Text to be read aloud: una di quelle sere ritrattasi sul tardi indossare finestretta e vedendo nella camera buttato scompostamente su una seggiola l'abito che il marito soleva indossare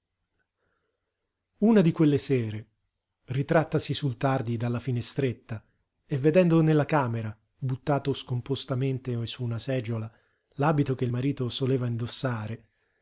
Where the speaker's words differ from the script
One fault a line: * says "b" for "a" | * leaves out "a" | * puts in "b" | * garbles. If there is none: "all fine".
* says "dalla" for "indossare"